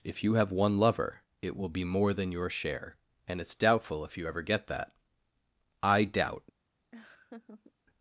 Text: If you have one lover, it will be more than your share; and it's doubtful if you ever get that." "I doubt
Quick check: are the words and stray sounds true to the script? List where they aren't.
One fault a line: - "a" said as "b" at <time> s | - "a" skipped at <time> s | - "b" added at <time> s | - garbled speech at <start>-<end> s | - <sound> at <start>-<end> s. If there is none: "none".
- laugh at 6.9-7.7 s